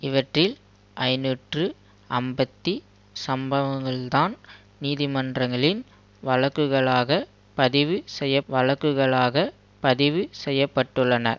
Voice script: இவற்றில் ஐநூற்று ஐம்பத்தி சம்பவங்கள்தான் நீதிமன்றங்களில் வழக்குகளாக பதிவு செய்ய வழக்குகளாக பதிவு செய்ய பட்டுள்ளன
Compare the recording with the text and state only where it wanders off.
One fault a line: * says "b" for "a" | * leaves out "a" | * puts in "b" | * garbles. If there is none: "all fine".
all fine